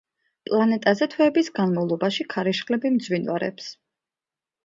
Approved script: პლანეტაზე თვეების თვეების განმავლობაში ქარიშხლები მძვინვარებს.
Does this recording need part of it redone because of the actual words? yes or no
yes